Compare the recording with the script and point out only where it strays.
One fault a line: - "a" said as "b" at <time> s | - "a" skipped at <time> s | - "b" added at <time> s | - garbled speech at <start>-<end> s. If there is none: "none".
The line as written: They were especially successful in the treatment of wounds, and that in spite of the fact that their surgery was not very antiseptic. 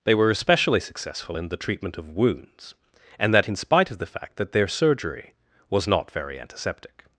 none